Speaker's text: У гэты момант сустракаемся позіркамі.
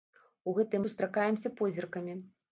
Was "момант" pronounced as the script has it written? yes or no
no